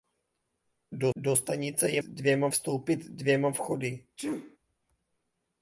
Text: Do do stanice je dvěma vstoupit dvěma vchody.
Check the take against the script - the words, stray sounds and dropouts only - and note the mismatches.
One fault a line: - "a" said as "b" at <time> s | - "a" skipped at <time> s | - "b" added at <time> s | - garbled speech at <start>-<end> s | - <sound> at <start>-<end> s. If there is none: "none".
- sneeze at 4.2-4.6 s